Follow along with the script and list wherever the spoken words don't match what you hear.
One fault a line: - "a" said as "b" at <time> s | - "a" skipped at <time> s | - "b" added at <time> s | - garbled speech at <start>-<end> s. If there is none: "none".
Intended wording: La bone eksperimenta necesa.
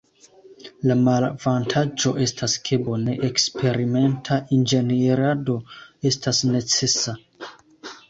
- "malavantaĝo estas ke" added at 1.0 s
- "inĝenierado estas" added at 4.6 s